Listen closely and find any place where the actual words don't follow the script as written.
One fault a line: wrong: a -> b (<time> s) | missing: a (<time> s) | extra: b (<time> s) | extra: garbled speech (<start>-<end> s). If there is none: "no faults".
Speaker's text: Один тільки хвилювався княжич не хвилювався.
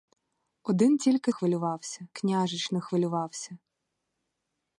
no faults